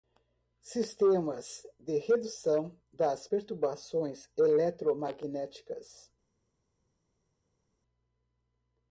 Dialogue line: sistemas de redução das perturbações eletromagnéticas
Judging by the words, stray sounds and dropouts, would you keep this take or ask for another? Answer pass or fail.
pass